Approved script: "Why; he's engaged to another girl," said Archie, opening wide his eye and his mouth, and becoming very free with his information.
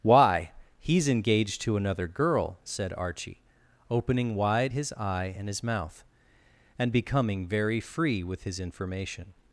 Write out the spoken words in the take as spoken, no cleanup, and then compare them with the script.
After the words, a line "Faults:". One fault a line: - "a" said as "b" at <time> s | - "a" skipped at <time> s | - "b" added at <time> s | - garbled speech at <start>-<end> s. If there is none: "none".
"Why; he's engaged to another girl," said Archie, opening wide his eye and his mouth, and becoming very free with his information.
Faults:
none